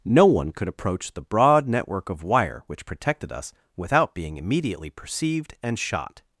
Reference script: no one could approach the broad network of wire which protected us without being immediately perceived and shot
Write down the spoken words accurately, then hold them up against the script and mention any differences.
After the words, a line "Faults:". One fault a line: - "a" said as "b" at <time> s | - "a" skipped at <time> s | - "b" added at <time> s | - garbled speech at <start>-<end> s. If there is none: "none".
no one could approach the broad network of wire which protected us without being immediately perceived and shot
Faults:
none